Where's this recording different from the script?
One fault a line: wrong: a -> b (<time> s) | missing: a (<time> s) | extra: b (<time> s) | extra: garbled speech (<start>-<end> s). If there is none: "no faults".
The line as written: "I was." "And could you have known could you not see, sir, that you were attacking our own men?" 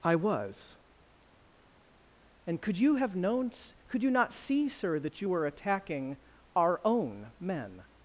no faults